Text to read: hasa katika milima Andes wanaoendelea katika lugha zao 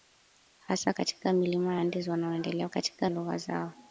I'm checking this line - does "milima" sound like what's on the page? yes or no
yes